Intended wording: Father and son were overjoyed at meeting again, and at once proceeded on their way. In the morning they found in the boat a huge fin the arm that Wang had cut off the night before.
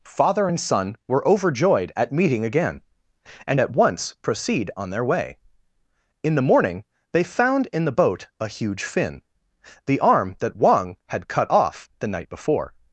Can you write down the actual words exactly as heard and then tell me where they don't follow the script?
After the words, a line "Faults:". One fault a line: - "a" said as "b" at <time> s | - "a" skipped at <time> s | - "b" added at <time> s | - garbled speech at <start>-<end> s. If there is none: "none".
Father and son were overjoyed at meeting again, and at once proceed on their way. In the morning they found in the boat a huge fin the arm that Wang had cut off the night before.
Faults:
- "proceeded" said as "proceed" at 4.2 s